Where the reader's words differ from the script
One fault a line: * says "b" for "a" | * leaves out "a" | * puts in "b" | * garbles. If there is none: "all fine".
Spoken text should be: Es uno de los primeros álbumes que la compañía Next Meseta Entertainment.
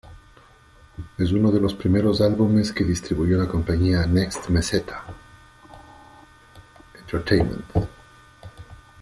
* puts in "distribuyó"